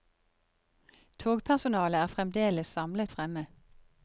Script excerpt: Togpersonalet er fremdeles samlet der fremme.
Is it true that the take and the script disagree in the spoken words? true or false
true